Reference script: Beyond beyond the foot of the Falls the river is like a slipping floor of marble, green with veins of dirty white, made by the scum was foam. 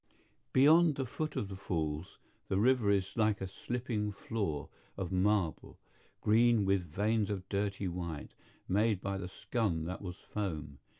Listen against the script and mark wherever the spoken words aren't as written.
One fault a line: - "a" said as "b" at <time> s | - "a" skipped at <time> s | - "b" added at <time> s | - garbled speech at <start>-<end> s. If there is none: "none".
- "beyond" skipped at 0.9 s
- "that" added at 9.8 s